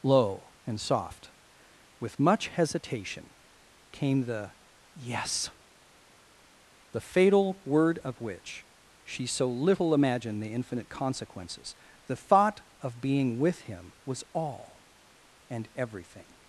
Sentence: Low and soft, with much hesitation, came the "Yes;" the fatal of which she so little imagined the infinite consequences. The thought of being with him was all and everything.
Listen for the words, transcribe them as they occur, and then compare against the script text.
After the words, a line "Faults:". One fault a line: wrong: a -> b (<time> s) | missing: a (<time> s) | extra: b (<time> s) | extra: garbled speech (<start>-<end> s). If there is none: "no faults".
Low and soft, with much hesitation, came the "Yes;" the fatal word of which she so little imagined the infinite consequences. The thought of being with him was all and everything.
Faults:
extra: word (7.6 s)